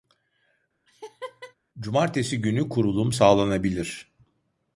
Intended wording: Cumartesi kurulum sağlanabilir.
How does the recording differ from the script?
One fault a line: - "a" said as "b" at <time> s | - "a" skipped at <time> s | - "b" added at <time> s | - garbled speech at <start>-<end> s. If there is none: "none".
- "günü" added at 2.4 s